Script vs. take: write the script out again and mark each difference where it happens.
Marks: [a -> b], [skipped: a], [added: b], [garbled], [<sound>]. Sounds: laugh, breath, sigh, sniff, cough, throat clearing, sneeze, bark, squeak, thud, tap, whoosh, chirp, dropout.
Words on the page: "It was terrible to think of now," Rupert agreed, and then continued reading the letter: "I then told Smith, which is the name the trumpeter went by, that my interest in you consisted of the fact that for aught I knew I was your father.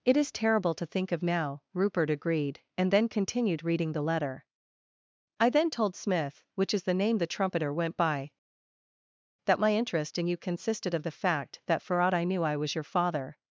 "It [was -> is] terrible to think of now," Rupert agreed, and then continued reading the letter: "I then told Smith, which is the name the trumpeter went by, that my interest in you consisted of the fact that for aught I knew I was your father.